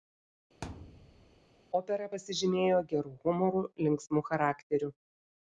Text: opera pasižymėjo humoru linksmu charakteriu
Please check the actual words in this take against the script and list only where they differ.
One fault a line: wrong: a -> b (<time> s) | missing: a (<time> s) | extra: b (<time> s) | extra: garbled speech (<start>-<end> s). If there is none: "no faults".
extra: geru (2.9 s)